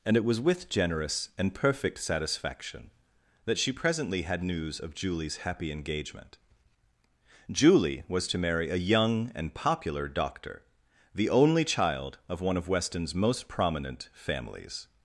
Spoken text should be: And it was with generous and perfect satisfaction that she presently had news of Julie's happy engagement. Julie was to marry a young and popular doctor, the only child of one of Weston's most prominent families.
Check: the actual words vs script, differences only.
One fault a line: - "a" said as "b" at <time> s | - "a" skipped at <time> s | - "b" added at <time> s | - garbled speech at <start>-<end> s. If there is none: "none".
none